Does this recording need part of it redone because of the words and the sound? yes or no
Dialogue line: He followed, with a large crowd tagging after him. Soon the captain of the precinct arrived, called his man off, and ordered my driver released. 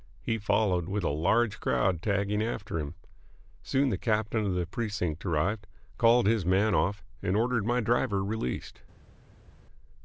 no